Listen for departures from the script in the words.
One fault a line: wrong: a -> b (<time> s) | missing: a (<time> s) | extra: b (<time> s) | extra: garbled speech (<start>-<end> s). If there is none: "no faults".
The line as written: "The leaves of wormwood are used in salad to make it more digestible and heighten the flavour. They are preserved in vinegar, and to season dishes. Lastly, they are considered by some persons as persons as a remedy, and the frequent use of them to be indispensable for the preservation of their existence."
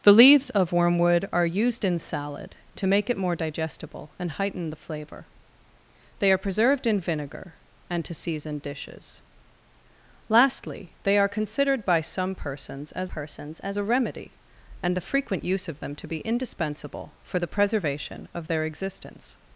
no faults